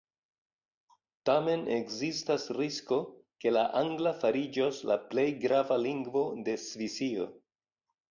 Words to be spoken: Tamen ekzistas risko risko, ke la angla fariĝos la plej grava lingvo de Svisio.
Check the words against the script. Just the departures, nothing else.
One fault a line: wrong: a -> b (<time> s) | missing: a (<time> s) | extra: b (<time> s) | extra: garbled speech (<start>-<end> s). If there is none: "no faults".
missing: risko (3.0 s)